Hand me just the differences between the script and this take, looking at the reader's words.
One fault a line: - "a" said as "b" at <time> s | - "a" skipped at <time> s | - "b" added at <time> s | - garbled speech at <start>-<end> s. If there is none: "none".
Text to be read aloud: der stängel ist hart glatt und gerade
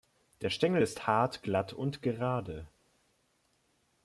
none